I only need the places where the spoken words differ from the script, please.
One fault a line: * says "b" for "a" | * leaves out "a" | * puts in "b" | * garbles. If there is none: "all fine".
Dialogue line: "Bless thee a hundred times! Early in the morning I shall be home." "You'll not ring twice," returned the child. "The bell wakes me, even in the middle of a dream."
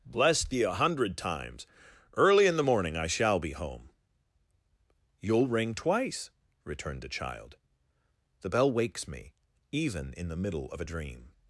* leaves out "not"